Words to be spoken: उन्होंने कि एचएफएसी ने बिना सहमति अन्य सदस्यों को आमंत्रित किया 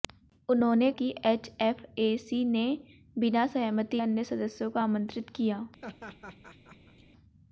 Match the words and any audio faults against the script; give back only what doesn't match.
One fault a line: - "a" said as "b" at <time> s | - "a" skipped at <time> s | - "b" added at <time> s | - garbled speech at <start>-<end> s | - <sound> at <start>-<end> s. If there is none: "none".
- laugh at 5.8-7.0 s